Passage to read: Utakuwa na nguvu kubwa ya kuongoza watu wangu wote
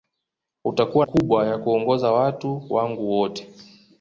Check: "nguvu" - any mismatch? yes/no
yes